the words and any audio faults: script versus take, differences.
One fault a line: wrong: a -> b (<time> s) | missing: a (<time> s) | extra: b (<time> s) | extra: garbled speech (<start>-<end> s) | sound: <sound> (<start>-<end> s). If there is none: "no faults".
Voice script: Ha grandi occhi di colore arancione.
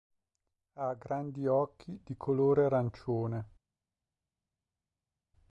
no faults